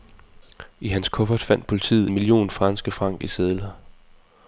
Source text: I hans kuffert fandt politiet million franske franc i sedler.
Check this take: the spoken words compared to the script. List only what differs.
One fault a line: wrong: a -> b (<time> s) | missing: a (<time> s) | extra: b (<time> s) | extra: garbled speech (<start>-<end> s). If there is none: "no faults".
no faults